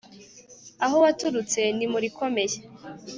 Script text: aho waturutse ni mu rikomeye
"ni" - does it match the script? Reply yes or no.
yes